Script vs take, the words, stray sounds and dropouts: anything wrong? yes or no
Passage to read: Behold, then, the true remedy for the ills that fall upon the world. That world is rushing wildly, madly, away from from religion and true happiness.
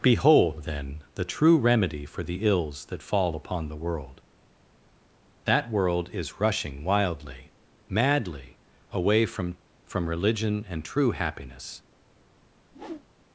yes